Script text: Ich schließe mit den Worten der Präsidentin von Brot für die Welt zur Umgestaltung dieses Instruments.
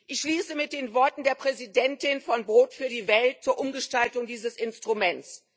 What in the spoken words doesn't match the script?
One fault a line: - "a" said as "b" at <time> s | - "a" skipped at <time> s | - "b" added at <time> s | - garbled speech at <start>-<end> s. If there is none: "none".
none